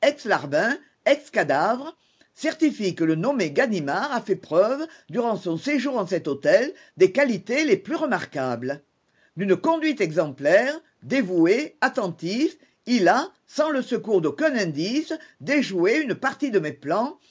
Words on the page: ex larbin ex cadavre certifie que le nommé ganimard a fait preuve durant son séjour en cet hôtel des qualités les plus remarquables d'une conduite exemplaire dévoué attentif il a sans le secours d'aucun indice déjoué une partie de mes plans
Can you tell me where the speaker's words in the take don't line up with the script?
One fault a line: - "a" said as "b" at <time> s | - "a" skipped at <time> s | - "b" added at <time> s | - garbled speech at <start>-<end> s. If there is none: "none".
none